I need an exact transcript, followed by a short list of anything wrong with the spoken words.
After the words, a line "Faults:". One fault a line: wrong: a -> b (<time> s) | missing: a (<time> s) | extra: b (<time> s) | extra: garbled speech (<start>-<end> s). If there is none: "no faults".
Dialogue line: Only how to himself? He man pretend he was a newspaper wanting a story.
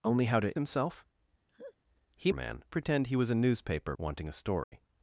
Only how to himself? He man pretend he was a newspaper wanting a story.
Faults:
no faults